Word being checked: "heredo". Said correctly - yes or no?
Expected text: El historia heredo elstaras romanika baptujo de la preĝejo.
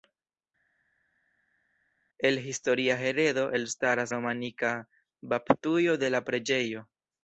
yes